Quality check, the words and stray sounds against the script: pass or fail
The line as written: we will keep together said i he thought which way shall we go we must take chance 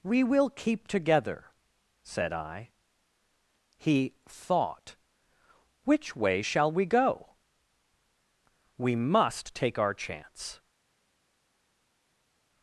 fail